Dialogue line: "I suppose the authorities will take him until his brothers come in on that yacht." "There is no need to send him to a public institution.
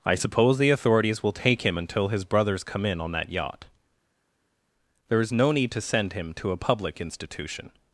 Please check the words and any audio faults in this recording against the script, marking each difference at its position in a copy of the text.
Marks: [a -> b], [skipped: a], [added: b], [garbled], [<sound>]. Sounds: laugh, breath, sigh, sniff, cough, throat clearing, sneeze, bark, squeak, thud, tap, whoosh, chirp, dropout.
"I suppose the authorities will take him until his brothers come in on that yacht." "There is no need to send him to a public institution.